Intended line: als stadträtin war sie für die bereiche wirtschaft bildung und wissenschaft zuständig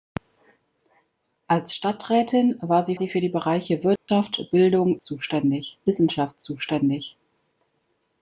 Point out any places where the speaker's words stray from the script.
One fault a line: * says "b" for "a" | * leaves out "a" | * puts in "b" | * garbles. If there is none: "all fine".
* puts in "sie"
* says "zuständig" for "und"